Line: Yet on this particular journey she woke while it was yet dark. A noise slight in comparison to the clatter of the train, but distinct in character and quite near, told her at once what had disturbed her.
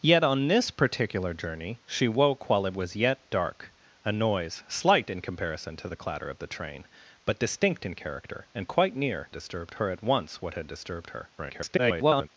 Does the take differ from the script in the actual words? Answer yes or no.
yes